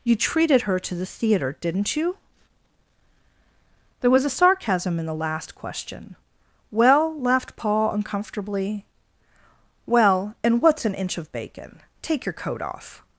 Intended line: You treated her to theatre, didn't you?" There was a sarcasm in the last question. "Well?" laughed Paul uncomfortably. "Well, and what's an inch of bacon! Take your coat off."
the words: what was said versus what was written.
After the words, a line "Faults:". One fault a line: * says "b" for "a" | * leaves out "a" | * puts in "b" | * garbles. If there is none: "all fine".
You treated her to the theatre, didn't you?" There was a sarcasm in the last question. "Well?" laughed Paul uncomfortably. "Well, and what's an inch of bacon! Take your coat off."
Faults:
* puts in "the"